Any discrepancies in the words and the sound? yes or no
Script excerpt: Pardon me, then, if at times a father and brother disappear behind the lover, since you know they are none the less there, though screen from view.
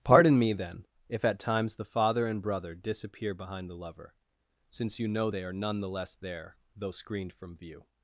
yes